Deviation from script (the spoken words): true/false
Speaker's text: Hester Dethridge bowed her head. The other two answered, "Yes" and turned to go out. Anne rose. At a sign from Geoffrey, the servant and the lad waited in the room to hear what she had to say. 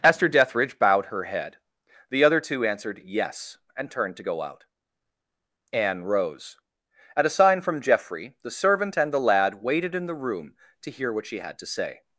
true